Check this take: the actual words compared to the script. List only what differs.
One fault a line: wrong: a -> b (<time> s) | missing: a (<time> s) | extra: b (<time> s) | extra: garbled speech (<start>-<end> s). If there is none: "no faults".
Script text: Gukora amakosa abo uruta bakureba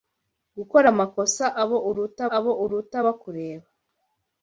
extra: abo uruta (2.4 s)